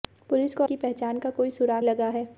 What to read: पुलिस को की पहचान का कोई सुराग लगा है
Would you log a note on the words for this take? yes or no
no